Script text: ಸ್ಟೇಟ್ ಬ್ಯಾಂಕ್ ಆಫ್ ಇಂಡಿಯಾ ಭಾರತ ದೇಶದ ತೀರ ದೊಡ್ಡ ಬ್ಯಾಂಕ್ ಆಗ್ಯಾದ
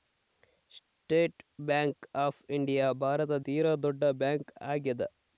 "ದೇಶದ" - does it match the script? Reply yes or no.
no